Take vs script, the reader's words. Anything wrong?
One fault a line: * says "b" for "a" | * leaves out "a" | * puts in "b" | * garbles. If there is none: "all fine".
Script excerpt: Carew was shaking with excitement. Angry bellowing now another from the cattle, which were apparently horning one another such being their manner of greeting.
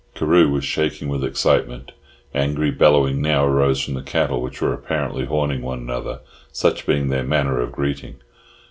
* says "arose" for "another"